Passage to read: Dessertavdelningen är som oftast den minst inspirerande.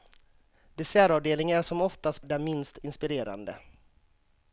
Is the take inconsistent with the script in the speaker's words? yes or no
no